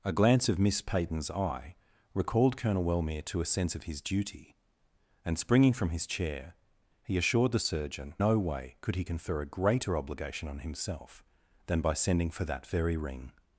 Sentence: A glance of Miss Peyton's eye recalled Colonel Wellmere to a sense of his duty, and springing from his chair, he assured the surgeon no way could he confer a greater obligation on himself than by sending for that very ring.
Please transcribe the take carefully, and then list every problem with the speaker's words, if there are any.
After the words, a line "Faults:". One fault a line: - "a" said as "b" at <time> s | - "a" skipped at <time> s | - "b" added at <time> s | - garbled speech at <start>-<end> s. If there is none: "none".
A glance of Miss Peyton's eye recalled Colonel Wellmere to a sense of his duty, and springing from his chair, he assured the surgeon no way could he confer a greater obligation on himself than by sending for that very ring.
Faults:
none